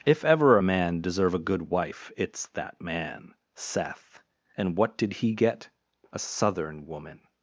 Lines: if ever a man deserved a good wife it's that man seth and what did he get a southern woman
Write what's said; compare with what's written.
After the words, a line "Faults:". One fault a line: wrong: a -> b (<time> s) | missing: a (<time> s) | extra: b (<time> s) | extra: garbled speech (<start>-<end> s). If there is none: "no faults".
if ever a man deserve a good wife it's that man seth and what did he get a southern woman
Faults:
wrong: deserved -> deserve (1.0 s)